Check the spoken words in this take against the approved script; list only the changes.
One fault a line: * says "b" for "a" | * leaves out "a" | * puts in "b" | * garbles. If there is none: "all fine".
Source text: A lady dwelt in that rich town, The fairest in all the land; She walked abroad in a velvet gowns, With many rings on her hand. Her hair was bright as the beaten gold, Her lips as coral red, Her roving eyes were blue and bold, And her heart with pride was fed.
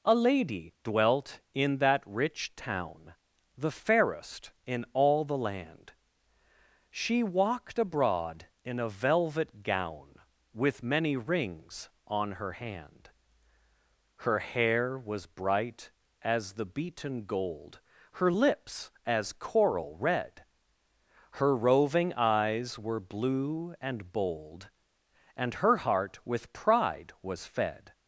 * says "gown" for "gowns"